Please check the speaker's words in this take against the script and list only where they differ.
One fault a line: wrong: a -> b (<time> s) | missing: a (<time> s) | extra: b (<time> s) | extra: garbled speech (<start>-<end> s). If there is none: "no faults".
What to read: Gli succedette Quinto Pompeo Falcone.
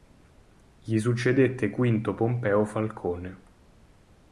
no faults